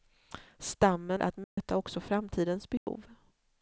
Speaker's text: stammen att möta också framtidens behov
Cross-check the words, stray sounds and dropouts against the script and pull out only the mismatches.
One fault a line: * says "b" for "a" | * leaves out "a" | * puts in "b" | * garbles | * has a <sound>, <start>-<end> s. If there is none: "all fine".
* has a dropout, 1.4-1.6 s
* has a dropout, 2.8-2.9 s